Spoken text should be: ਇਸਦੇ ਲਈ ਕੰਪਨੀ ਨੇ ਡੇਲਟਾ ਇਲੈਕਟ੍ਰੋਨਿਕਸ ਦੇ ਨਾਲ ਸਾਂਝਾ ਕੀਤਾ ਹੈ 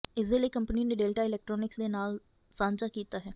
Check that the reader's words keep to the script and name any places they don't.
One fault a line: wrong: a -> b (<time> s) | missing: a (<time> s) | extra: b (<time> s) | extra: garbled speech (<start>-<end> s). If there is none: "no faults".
no faults